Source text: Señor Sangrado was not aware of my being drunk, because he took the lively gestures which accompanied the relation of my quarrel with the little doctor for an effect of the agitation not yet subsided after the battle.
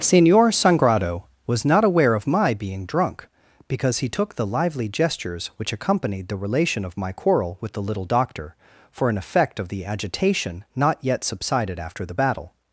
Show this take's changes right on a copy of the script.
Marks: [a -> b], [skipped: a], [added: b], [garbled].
Señor Sangrado was not aware of my being drunk, because he took the lively gestures which accompanied the relation of my quarrel with the little doctor for an effect of the agitation not yet subsided after the battle.